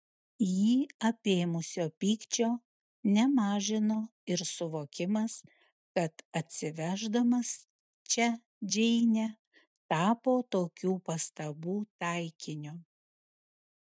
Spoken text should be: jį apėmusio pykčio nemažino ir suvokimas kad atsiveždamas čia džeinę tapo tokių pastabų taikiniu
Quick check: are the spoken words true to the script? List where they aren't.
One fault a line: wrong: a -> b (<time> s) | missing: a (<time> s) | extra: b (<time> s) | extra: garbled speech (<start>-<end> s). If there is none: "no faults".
no faults